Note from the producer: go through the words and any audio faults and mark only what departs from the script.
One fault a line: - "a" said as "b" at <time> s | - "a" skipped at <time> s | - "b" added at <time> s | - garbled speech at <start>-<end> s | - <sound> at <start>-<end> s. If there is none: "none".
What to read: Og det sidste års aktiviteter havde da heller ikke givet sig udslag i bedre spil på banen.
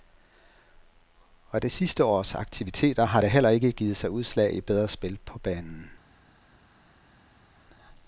- "havde" said as "har" at 3.0 s